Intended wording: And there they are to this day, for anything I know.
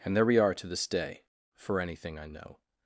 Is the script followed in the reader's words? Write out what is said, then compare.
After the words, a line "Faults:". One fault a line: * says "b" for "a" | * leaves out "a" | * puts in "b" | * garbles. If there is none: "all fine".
And there we are to this day, for anything I know.
Faults:
* says "we" for "they"